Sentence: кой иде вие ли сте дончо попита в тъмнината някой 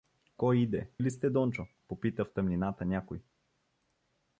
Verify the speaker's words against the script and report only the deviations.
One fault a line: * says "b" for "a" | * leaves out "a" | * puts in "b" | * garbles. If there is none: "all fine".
* leaves out "вие"